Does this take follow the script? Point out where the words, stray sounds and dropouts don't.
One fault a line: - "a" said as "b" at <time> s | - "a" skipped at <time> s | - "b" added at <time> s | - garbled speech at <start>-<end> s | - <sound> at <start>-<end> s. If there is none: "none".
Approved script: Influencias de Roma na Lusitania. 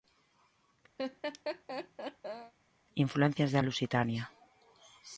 - laugh at 1.0-2.5 s
- "Roma na" skipped at 3.6 s